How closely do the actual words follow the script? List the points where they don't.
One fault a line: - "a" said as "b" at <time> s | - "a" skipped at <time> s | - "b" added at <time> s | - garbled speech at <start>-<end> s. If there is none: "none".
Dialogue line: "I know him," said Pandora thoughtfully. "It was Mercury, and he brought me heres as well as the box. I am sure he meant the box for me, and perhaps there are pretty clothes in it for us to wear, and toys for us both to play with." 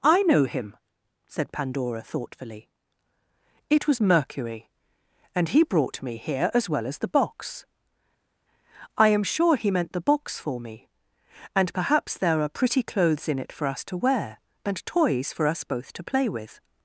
- "heres" said as "here" at 6.2 s